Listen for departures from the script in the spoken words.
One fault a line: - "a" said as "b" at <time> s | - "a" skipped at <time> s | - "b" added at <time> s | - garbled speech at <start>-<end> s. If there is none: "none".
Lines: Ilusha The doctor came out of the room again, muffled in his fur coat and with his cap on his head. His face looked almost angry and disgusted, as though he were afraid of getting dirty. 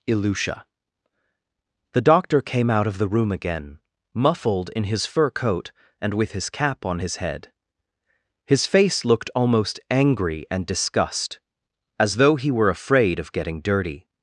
- "disgusted" said as "disgust" at 10.6 s